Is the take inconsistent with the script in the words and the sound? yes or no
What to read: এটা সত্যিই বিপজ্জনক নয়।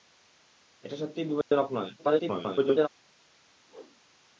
yes